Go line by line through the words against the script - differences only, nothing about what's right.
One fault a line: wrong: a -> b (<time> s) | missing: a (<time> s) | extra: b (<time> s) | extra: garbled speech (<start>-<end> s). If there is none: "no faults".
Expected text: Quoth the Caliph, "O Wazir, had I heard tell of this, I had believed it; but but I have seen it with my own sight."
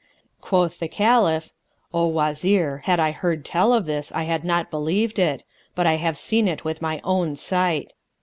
extra: not (4.4 s)
missing: but (5.9 s)